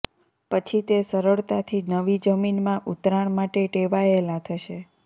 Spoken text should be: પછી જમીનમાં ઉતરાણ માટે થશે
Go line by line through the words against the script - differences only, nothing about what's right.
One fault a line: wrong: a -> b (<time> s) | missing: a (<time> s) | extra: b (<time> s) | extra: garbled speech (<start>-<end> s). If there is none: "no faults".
extra: તે સરળતાથી નવી (0.8 s)
extra: ટેવાયેલા (3.7 s)